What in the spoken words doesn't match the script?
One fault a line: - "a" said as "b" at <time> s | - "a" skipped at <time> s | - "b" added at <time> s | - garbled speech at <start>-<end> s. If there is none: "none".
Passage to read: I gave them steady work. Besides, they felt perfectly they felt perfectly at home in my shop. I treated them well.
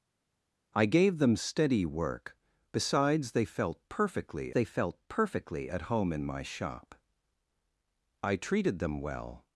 none